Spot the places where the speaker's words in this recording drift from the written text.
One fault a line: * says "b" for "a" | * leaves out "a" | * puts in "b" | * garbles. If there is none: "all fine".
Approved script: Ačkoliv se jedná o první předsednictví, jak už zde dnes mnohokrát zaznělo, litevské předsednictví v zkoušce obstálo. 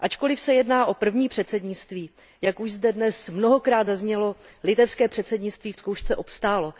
all fine